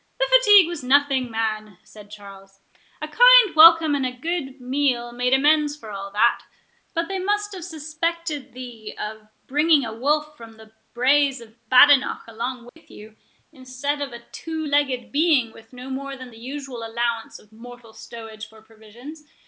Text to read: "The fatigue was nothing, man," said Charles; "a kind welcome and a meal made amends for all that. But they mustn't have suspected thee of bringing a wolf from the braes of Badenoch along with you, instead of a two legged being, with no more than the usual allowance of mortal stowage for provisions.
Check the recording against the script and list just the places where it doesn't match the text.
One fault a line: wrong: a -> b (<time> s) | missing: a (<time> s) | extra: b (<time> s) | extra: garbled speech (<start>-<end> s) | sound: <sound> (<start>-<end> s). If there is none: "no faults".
extra: good (4.1 s)
wrong: mustn't -> must (7.2 s)
sound: dropout (12.7-12.8 s)